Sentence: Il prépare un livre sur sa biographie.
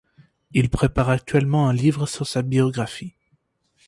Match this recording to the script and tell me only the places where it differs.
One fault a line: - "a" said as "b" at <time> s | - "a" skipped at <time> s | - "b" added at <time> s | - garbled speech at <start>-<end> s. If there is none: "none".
- "actuellement" added at 1.1 s